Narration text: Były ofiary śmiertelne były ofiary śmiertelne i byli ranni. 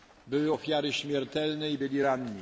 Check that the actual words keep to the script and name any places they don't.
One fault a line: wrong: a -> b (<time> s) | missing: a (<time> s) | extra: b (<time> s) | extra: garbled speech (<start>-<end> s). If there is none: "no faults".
missing: były ofiary śmiertelne (1.7 s)